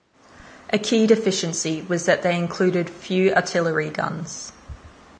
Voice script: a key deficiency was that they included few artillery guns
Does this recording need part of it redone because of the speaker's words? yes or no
no